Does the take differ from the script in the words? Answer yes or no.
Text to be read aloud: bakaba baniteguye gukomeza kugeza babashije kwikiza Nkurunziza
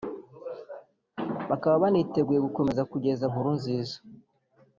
yes